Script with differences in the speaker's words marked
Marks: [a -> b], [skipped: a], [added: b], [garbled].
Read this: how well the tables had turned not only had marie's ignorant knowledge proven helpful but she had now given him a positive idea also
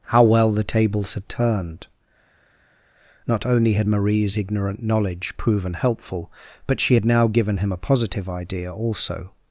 how well the tables had turned not only had marie's ignorant knowledge proven helpful but she had now given him a positive idea also